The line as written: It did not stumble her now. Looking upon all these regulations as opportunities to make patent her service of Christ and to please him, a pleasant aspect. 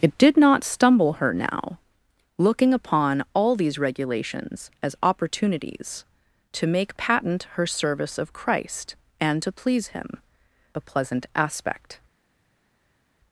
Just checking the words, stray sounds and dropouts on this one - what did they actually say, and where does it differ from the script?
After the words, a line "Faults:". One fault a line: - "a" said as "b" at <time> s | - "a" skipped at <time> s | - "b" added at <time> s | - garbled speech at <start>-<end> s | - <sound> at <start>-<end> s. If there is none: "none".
It did not stumble her now. Looking upon all these regulations as opportunities to make patent her service of Christ and to please him, a pleasant aspect.
Faults:
none